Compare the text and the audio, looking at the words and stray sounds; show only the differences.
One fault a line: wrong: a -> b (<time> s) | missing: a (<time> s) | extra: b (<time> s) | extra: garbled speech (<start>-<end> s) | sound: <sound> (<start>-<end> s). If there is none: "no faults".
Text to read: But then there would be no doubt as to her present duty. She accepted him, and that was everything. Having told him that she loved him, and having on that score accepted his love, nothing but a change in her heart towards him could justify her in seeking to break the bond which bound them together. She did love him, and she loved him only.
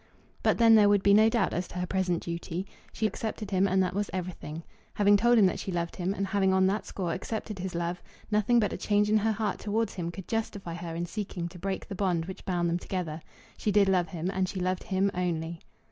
no faults